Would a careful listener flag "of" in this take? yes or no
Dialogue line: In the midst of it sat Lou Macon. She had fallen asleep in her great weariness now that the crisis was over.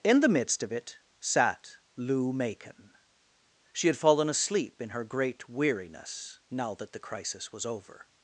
no